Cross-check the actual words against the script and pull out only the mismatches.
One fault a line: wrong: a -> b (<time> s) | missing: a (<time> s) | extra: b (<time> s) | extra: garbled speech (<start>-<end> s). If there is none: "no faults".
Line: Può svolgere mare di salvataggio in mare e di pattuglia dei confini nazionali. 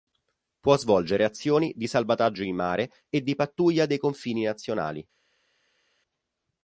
wrong: mare -> azioni (1.2 s)